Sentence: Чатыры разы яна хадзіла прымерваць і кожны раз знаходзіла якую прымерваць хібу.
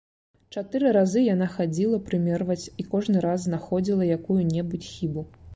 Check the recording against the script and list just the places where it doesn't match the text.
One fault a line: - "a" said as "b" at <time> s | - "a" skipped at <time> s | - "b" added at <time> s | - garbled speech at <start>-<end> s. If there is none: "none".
- "прымерваць" said as "небудзь" at 4.6 s